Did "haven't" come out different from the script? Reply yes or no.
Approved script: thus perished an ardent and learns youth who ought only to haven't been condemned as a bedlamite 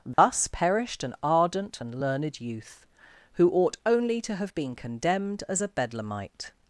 yes